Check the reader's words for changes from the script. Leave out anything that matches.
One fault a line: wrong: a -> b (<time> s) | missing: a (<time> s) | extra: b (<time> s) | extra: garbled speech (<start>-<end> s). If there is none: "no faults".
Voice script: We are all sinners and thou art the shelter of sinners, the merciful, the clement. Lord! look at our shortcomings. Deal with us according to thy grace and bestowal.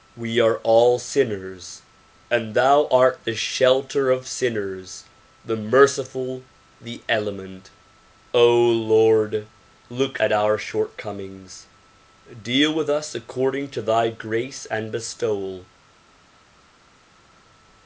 no faults